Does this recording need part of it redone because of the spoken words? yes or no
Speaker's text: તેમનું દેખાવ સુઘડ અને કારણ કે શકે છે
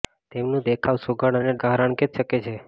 no